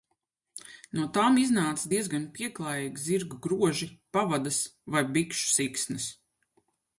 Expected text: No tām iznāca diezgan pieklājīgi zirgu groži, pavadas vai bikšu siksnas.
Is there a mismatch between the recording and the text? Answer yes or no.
no